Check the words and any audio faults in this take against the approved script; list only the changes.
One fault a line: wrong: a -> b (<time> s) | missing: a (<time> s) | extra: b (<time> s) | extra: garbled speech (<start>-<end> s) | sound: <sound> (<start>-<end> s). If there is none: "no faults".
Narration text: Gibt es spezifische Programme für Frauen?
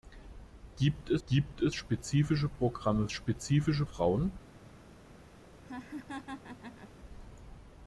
extra: gibt es (1.3 s)
wrong: für -> spezifische (3.1 s)
sound: laugh (5.6-6.9 s)